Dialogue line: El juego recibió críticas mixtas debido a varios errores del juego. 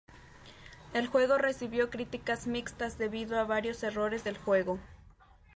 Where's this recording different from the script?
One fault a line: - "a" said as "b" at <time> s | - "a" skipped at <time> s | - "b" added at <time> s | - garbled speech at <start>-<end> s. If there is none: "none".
none